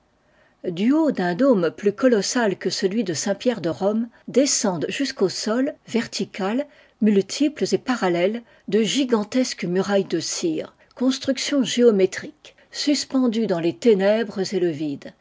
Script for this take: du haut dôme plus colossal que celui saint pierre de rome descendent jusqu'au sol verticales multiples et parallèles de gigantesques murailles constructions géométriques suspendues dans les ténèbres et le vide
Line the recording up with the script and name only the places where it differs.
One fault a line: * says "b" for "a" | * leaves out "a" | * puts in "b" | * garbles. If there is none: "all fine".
* puts in "d'un"
* puts in "de"
* puts in "de cire"